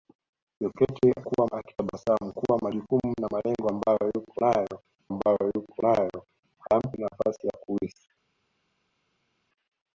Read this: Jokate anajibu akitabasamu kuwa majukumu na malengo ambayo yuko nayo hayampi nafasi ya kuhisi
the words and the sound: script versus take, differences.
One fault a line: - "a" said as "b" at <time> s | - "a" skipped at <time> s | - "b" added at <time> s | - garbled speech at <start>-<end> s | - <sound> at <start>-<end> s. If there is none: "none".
- "anajibu" said as "kuwa" at 1.2 s
- "ambayo yuko nayo" added at 5.1 s